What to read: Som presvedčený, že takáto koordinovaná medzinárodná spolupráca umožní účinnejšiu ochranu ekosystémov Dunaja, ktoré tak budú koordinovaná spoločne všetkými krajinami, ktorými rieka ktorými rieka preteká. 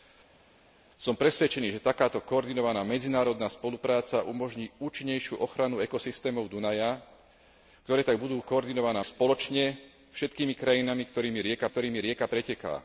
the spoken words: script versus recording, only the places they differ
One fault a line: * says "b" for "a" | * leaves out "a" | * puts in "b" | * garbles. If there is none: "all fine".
all fine